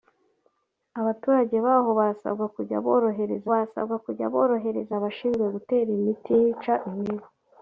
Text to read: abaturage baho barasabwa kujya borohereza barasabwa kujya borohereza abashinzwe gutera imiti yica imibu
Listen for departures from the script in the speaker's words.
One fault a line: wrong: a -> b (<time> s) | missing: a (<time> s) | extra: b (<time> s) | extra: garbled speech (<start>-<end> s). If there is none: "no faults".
no faults